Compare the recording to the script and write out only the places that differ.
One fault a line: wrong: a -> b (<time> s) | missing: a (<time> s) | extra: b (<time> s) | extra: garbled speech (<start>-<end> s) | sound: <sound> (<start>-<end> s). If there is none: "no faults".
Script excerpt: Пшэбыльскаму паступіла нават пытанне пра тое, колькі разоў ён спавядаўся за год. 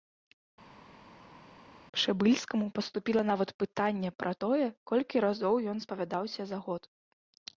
no faults